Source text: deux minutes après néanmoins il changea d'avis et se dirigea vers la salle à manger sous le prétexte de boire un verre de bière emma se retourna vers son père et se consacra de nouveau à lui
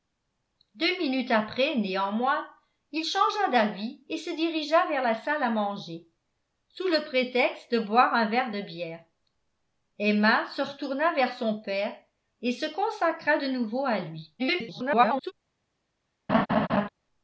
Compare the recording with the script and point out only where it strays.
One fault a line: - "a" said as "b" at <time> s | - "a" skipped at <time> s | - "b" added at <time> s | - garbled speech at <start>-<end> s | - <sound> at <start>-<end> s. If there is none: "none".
- garbled speech at 14.4-15.3 s
- laugh at 16.3-16.9 s